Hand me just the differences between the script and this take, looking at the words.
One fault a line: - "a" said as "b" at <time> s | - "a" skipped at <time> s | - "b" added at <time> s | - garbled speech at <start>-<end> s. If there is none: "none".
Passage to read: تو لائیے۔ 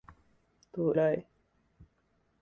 none